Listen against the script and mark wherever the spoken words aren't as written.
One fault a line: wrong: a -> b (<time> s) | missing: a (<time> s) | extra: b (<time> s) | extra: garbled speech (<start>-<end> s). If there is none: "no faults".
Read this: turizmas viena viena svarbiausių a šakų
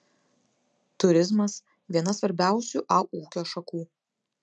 missing: viena (2.2 s)
extra: ūkio (3.2 s)